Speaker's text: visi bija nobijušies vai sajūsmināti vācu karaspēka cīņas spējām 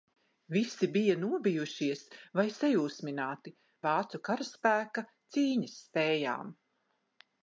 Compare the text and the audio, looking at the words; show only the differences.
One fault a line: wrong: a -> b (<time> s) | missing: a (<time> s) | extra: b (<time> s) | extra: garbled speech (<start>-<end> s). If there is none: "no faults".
no faults